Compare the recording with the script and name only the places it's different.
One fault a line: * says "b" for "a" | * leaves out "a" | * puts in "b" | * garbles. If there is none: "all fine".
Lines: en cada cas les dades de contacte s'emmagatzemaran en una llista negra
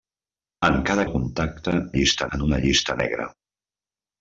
* leaves out "cas les dades"
* says "llista" for "s'emmagatzemaran"